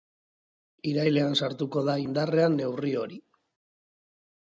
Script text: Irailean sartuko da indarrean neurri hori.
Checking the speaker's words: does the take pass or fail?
pass